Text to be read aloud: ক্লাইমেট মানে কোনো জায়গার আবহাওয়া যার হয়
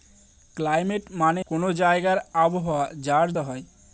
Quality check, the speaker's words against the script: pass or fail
pass